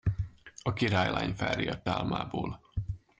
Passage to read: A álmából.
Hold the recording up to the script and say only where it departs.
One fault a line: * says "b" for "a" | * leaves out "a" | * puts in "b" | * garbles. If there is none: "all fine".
* puts in "királylány felriadt"